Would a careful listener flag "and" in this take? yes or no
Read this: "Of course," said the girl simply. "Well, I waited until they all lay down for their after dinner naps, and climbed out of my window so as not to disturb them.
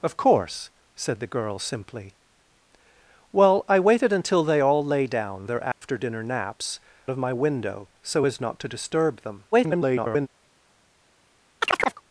yes